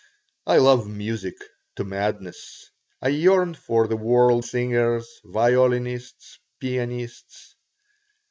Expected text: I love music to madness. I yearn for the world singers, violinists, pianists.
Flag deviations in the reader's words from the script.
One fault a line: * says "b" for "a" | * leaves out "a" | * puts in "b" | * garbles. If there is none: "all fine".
all fine